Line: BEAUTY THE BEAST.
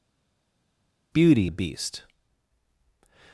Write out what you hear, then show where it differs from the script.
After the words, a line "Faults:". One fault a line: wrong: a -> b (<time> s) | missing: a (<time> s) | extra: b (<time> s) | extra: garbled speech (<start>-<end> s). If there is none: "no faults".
BEAUTY THE BEAST.
Faults:
no faults